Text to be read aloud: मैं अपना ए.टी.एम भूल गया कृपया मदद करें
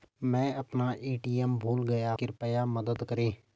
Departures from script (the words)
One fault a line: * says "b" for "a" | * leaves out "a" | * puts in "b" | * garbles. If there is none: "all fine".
all fine